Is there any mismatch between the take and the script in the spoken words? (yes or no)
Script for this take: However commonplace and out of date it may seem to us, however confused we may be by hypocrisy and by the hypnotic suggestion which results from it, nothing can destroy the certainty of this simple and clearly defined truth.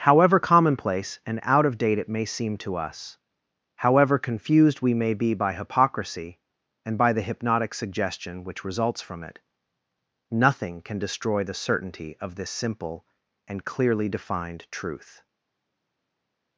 no